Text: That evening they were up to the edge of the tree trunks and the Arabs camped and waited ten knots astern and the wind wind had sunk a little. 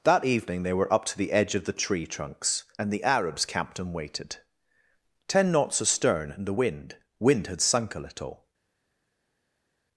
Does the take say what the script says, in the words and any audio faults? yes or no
yes